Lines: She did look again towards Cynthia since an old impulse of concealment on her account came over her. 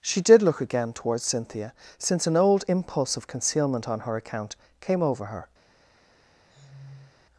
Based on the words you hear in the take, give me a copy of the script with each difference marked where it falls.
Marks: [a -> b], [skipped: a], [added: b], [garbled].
She did look again towards Cynthia since an old impulse of concealment on her account came over her.